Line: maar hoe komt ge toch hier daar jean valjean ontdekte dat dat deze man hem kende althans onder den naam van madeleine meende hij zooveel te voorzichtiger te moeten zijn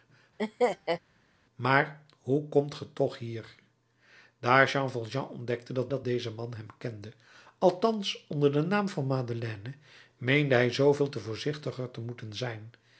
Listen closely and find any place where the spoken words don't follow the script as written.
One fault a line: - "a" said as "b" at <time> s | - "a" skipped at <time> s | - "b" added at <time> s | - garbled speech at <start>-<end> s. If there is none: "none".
none